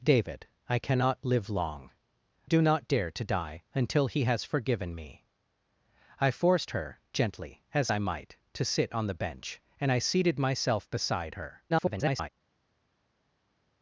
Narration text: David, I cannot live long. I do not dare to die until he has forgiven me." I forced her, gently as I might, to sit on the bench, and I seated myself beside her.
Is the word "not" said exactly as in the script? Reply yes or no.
yes